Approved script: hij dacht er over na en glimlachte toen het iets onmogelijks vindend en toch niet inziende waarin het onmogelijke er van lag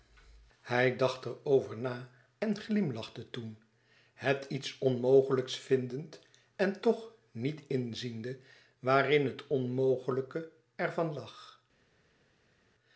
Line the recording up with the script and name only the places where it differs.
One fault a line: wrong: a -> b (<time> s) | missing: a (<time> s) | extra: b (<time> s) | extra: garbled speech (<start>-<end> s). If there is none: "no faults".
no faults